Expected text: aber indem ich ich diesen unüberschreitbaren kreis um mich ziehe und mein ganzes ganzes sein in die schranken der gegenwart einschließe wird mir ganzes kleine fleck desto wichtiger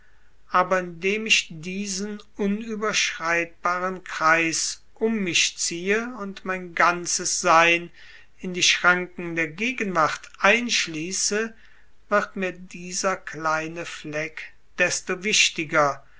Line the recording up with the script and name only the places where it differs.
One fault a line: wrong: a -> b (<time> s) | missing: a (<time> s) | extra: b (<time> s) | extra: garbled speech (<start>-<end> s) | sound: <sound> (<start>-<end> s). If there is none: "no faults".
missing: ich (1.4 s)
missing: ganzes (7.4 s)
wrong: ganzes -> dieser (12.5 s)